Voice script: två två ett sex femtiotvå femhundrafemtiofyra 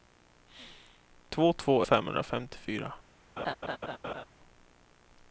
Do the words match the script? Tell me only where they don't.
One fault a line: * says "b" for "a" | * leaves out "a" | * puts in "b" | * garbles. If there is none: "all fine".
* leaves out "ett sex femtiotvå"